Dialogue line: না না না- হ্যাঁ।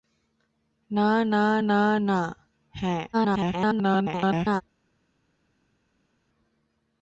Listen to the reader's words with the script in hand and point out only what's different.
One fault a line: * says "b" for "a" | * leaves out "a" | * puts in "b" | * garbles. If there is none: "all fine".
* puts in "না"
* garbles